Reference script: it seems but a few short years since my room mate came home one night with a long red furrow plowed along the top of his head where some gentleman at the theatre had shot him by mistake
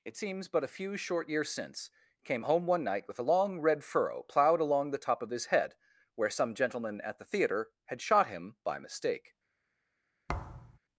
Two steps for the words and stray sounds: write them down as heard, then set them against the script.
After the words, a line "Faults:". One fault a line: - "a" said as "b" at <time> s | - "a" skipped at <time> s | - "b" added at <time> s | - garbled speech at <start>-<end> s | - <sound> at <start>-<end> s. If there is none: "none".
it seems but a few short years since came home one night with a long red furrow plowed along the top of his head where some gentleman at the theatre had shot him by mistake
Faults:
- "my room mate" skipped at 1.9 s
- thud at 10.3-10.8 s